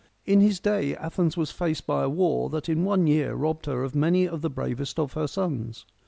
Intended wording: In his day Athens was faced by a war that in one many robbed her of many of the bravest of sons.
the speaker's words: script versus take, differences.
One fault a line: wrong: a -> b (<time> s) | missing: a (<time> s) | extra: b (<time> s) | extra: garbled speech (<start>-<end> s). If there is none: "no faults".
wrong: many -> year (3.0 s)
extra: her (5.1 s)